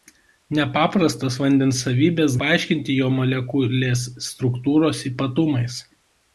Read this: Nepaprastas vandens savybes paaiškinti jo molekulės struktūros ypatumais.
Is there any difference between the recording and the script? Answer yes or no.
no